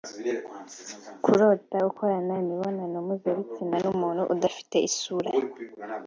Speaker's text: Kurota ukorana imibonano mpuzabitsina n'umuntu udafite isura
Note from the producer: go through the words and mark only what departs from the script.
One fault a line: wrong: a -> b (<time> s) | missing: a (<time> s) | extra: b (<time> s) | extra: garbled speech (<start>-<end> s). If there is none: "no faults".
no faults